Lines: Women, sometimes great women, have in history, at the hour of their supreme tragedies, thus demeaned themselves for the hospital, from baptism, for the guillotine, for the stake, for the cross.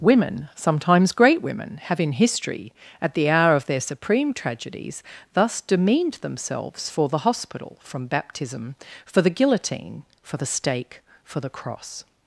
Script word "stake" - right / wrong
right